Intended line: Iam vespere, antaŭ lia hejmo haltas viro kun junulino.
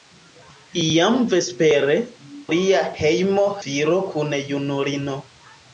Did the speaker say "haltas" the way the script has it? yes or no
no